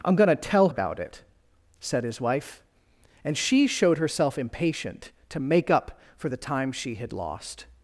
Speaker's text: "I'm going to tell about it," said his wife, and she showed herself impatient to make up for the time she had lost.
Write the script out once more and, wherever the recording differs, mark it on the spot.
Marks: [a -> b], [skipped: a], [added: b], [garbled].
"I'm going to tell about it," said his wife, and she showed herself impatient to make up for the time she had lost.